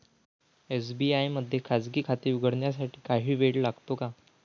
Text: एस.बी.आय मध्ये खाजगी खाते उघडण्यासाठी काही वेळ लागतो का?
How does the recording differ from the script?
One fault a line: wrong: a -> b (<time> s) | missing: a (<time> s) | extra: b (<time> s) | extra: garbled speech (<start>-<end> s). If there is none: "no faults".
no faults